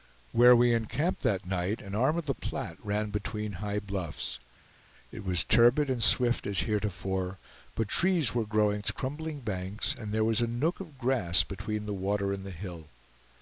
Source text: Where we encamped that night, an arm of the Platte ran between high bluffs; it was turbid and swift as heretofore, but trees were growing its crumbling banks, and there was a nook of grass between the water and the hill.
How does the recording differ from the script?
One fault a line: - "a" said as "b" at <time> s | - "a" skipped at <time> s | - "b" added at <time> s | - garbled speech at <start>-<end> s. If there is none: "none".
none